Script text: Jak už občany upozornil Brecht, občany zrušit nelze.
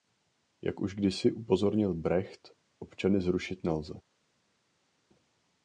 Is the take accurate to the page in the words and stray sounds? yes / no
no